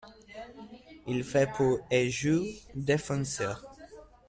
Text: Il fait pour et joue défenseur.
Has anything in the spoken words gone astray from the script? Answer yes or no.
no